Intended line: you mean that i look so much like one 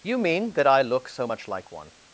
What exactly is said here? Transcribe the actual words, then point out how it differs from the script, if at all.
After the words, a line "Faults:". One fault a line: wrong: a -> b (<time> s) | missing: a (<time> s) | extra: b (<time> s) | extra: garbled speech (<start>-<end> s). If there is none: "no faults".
you mean that i look so much like one
Faults:
no faults